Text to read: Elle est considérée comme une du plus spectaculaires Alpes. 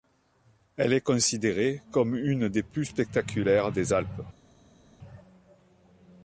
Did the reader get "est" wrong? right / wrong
right